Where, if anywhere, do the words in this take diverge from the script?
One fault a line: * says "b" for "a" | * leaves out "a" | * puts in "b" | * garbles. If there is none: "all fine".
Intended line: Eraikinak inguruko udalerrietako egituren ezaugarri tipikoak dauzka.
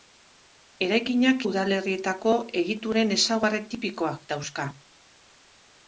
* leaves out "inguruko"